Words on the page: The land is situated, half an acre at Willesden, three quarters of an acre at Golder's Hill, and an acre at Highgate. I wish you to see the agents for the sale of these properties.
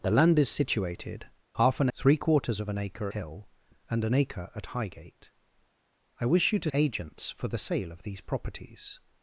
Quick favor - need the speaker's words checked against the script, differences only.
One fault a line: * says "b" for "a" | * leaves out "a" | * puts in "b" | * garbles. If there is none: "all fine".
* leaves out "acre at Willesden"
* leaves out "at Golder's"
* leaves out "see the"